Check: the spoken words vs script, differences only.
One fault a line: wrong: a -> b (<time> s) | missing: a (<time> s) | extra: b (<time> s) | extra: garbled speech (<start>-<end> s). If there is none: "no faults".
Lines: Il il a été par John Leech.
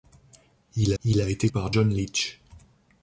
no faults